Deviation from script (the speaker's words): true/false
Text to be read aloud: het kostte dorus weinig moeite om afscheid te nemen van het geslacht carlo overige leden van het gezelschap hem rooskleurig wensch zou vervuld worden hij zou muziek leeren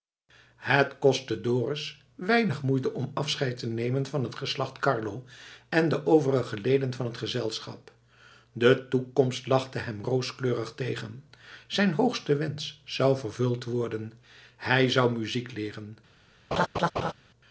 true